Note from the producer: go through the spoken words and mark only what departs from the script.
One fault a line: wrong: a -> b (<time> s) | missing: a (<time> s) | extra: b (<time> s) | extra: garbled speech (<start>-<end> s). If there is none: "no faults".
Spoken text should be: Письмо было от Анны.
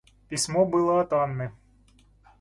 no faults